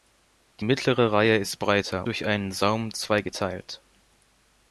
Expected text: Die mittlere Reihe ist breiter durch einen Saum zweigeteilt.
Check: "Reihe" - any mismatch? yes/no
no